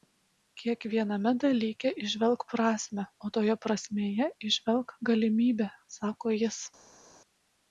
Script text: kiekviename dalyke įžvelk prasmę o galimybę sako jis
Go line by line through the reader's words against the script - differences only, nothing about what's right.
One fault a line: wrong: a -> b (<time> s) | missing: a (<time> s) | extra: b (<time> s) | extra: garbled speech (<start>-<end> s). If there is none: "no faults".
extra: toje prasmėje įžvelk (3.4 s)